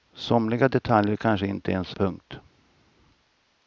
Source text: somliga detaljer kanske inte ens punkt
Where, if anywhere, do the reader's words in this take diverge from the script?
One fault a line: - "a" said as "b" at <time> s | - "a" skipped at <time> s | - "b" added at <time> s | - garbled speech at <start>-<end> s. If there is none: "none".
none